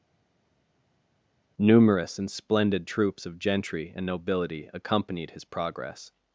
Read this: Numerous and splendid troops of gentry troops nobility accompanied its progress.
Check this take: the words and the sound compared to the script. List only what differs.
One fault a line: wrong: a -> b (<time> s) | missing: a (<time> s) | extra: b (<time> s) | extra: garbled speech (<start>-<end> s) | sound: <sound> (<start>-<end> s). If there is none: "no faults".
wrong: troops -> and (3.9 s)
wrong: its -> his (5.3 s)